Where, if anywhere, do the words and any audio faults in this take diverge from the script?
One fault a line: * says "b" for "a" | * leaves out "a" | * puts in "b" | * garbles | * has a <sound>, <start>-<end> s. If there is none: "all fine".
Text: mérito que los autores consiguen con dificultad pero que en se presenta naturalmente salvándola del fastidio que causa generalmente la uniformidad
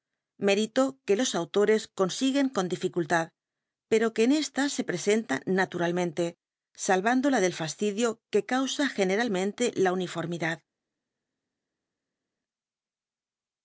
* puts in "esta"